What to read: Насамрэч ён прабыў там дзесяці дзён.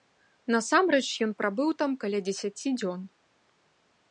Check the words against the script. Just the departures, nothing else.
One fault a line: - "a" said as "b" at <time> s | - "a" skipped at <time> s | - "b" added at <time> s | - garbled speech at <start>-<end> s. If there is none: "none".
- "каля" added at 2.0 s